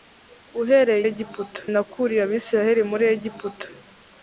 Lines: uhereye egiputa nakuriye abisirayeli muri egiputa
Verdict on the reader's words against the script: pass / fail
pass